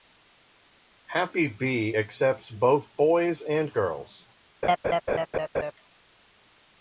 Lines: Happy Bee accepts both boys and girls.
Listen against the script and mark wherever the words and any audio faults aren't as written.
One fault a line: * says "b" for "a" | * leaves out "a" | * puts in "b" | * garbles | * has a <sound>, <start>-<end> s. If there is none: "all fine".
* has a laugh, 4.6-5.7 s